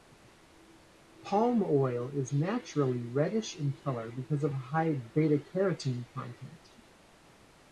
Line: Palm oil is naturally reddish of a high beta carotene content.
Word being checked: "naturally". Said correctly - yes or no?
yes